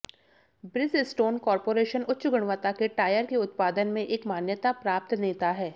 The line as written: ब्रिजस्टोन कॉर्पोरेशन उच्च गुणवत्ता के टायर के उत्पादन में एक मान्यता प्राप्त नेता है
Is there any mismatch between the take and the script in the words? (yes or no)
no